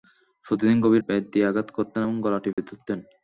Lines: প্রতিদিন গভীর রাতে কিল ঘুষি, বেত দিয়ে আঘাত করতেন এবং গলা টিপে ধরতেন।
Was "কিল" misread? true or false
true